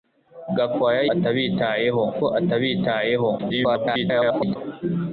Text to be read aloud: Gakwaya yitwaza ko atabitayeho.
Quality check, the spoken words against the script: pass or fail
fail